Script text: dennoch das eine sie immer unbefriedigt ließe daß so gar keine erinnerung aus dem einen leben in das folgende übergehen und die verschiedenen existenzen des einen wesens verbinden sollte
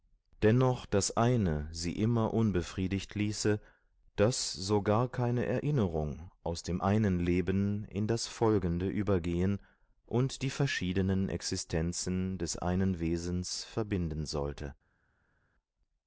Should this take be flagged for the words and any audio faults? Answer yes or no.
no